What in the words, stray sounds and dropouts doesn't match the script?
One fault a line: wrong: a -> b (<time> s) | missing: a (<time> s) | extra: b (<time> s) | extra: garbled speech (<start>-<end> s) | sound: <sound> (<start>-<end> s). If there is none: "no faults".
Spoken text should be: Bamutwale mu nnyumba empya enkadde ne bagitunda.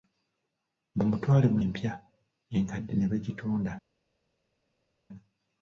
missing: nnyumba (1.6 s)